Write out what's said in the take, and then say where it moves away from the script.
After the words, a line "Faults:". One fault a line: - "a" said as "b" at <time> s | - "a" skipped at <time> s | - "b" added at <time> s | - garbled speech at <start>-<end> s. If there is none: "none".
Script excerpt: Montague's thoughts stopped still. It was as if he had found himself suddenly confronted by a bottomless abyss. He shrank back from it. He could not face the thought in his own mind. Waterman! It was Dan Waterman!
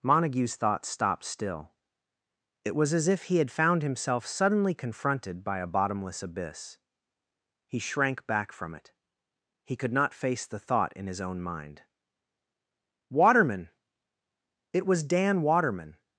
Montague's thoughts stopped still. It was as if he had found himself suddenly confronted by a bottomless abyss. He shrank back from it. He could not face the thought in his own mind. Waterman! It was Dan Waterman!
Faults:
none